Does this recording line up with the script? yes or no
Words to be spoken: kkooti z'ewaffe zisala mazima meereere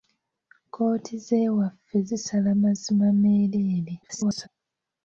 no